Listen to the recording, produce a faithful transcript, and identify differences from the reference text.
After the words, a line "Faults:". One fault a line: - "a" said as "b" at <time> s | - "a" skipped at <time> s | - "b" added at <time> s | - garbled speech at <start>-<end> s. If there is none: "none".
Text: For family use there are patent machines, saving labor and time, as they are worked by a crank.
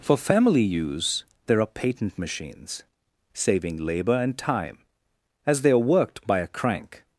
For family use there are patent machines, saving labor and time, as they are worked by a crank.
Faults:
none